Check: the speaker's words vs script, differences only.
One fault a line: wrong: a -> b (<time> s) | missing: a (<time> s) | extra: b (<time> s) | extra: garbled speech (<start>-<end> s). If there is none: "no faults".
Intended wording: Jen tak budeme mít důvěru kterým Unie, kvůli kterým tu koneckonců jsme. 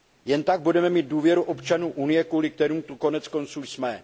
wrong: kterým -> občanů (1.4 s)